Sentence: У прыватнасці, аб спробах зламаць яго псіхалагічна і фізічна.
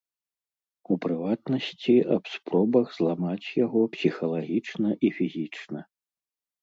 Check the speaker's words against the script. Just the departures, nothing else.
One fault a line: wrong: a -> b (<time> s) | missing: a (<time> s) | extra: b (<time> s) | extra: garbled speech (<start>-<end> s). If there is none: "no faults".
no faults